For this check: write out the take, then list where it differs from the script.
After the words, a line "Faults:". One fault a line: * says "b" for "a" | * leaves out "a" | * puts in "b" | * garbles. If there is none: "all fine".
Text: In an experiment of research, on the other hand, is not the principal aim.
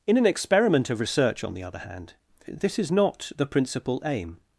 In an experiment of research, on the other hand, this is not the principal aim.
Faults:
* puts in "this"